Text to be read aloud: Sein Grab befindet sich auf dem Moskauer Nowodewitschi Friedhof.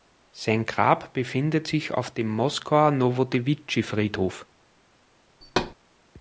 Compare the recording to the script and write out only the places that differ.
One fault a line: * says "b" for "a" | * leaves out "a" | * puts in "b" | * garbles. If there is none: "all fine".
all fine